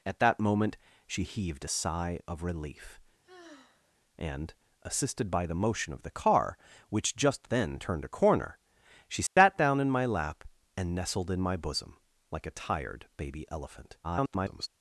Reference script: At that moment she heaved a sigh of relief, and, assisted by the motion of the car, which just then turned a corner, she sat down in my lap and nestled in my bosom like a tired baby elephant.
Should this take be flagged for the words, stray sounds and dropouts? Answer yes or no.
yes